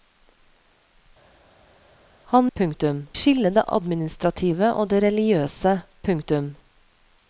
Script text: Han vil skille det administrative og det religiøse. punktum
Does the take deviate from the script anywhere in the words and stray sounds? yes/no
yes